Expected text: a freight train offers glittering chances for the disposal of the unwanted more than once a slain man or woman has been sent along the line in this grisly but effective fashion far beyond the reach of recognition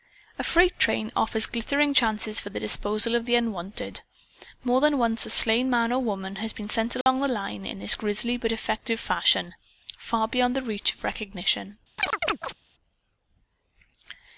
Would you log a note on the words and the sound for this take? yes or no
yes